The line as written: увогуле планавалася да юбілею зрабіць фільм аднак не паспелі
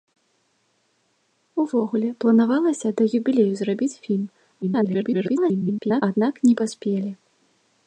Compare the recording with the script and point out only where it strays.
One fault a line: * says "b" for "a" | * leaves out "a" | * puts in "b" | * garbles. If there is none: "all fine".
* garbles